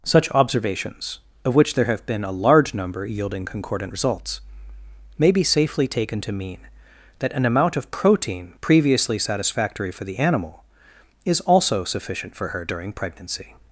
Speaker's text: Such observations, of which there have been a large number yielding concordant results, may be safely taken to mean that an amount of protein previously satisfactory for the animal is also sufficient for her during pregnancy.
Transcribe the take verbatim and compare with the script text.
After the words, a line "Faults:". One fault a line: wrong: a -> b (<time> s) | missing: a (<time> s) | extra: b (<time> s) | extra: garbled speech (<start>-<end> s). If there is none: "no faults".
Such observations, of which there have been a large number yielding concordant results, may be safely taken to mean that an amount of protein previously satisfactory for the animal is also sufficient for her during pregnancy.
Faults:
no faults